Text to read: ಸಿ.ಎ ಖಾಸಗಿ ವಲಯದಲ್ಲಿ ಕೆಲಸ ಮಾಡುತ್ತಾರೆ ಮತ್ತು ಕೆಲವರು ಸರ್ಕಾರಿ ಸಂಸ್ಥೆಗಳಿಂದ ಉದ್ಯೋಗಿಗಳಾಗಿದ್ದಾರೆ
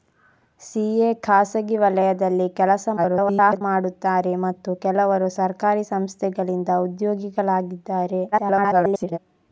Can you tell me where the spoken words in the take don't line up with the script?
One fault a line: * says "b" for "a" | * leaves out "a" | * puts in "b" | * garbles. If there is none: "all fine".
* garbles
* garbles